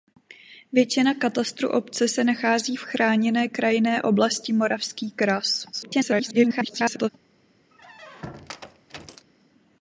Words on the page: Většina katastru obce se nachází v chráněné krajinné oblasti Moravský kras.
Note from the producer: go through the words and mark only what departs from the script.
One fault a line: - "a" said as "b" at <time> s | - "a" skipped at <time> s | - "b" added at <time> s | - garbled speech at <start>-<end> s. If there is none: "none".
- garbled speech at 5.7-7.1 s